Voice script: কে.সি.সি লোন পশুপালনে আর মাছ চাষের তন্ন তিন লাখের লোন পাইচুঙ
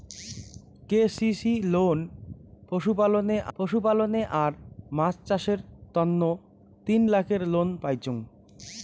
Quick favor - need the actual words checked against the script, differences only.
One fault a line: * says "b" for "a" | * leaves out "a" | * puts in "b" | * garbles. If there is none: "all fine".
* puts in "পশুপালনে"